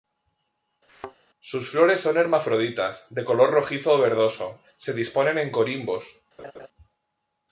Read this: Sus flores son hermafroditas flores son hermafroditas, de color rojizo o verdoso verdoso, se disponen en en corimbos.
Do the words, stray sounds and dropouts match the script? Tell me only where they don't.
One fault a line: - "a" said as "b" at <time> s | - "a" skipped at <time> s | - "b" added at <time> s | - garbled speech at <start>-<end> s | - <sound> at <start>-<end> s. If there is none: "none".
- thud at 0.9-1.2 s
- "flores son hermafroditas" skipped at 3.1 s
- "verdoso" skipped at 4.6 s
- "en" skipped at 5.5 s
- laugh at 6.4-6.7 s